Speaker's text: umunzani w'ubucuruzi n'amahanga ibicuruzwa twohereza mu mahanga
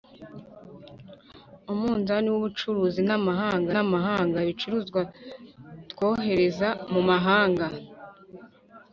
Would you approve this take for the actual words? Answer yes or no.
no